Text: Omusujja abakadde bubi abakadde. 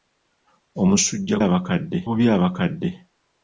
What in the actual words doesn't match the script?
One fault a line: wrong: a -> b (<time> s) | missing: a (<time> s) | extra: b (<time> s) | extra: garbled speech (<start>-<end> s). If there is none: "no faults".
no faults